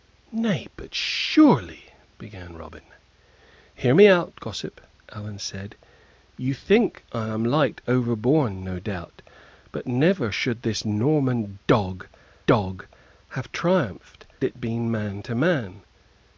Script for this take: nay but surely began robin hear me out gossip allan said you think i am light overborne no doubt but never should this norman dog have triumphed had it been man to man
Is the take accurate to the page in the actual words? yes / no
no